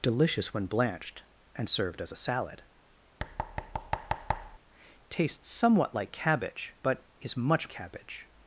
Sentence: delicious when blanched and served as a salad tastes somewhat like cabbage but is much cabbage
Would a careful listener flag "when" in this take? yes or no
no